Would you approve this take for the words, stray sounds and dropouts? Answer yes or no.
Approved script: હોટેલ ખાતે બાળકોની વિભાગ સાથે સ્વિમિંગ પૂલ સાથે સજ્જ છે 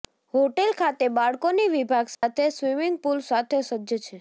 no